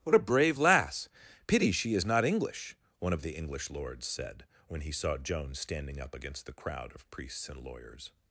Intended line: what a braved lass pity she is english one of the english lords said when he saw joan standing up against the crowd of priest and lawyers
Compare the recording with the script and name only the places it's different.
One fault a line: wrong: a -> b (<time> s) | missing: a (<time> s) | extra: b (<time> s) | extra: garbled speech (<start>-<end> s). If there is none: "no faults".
wrong: braved -> brave (0.2 s)
extra: not (2.0 s)
wrong: priest -> priests (7.1 s)